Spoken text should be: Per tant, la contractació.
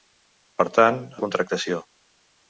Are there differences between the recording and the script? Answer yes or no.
no